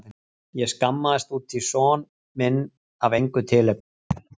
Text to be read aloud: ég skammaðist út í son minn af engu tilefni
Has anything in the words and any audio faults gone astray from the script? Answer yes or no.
yes